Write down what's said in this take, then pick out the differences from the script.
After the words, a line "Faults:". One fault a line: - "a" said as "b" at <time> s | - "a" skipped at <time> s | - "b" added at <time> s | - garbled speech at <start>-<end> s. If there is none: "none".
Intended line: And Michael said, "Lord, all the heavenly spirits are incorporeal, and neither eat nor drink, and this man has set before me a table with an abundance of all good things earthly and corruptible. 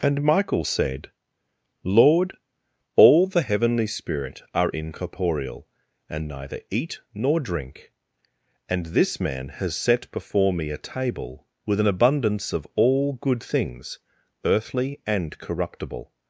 And Michael said, "Lord, all the heavenly spirit are incorporeal, and neither eat nor drink, and this man has set before me a table with an abundance of all good things earthly and corruptible.
Faults:
- "spirits" said as "spirit" at 3.9 s